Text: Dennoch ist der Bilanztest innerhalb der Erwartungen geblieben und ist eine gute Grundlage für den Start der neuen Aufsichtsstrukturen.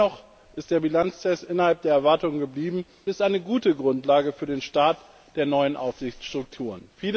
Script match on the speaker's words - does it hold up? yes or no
no